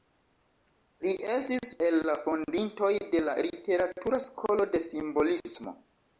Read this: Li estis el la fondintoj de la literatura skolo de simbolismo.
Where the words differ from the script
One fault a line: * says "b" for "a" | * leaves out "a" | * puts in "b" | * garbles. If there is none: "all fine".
all fine